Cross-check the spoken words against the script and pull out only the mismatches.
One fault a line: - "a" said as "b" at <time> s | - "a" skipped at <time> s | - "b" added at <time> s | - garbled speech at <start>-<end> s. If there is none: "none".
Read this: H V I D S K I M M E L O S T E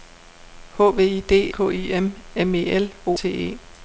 - "S" skipped at 1.5 s
- "S" skipped at 3.2 s